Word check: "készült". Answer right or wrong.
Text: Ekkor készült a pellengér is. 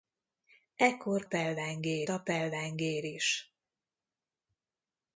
wrong